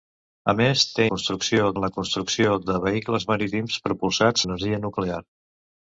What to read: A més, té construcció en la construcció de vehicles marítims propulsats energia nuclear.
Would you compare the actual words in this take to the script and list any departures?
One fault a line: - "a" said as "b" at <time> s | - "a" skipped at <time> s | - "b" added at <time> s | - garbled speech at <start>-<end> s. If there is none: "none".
none